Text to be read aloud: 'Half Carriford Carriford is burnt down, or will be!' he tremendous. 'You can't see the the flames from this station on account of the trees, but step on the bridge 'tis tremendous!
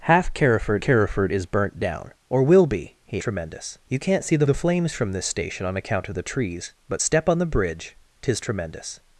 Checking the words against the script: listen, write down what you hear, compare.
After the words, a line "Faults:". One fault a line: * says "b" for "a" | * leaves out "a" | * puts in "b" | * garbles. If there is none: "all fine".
'Half Carriford Carriford is burnt down, or will be!' he tremendous. 'You can't see the the flames from this station on account of the trees, but step on the bridge 'tis tremendous!
Faults:
all fine